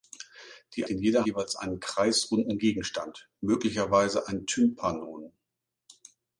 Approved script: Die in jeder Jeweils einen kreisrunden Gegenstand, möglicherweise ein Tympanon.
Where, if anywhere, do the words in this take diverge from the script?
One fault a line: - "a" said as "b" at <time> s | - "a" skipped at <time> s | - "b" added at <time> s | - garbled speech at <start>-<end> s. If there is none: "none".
none